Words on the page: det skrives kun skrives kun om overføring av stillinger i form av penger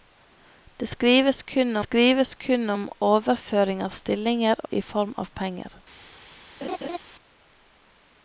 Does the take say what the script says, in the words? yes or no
yes